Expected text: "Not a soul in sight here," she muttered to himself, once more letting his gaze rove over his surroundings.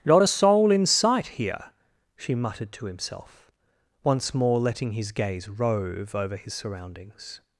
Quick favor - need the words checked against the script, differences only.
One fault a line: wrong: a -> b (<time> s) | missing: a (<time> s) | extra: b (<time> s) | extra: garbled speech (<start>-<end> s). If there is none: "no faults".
no faults